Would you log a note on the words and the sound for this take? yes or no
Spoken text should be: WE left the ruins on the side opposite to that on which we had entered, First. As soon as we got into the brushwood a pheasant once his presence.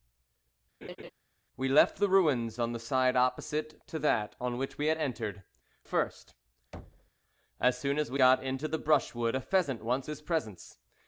yes